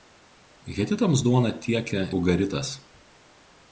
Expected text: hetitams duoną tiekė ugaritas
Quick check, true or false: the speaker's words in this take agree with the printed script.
true